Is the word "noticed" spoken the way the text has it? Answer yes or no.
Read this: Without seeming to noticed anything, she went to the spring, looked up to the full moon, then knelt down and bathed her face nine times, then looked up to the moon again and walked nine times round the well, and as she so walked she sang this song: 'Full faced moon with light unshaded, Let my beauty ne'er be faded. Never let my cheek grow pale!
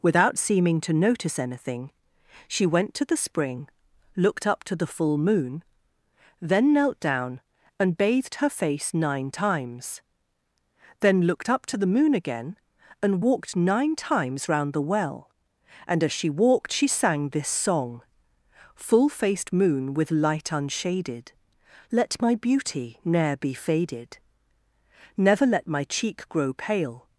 no